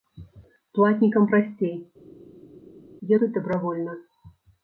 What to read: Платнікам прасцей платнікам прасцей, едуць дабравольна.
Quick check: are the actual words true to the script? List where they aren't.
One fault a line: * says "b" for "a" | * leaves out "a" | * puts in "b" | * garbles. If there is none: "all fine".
* leaves out "платнікам прасцей"